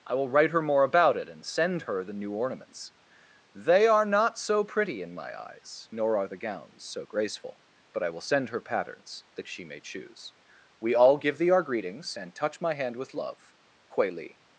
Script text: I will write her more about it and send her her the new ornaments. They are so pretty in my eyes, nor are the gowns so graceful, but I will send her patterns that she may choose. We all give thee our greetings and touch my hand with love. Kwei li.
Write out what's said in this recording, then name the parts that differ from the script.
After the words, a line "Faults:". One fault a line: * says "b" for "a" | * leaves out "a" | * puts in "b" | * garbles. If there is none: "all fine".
I will write her more about it and send her the new ornaments. They are not so pretty in my eyes, nor are the gowns so graceful, but I will send her patterns that she may choose. We all give thee our greetings and touch my hand with love. Kwei li.
Faults:
* leaves out "her"
* puts in "not"